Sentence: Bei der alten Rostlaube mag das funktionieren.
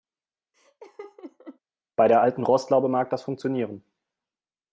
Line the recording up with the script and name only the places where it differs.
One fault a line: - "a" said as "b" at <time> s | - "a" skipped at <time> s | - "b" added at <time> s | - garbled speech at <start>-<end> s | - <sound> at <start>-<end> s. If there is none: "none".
- laugh at 0.5-1.6 s